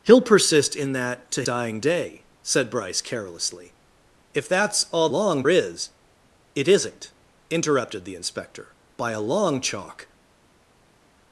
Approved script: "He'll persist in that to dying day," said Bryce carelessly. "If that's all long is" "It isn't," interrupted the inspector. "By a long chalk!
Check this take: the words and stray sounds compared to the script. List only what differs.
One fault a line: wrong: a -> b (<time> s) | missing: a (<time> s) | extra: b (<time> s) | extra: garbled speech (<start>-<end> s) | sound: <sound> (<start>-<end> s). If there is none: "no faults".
no faults